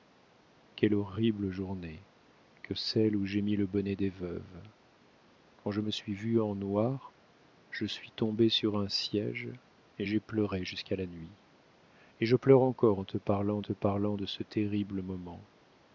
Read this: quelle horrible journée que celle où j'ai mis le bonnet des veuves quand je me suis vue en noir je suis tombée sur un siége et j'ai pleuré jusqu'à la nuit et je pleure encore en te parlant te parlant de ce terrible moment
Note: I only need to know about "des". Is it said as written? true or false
true